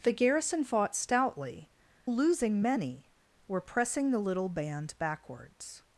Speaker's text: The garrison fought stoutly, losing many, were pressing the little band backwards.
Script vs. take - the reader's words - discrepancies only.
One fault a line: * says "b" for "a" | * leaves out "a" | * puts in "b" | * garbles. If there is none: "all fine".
all fine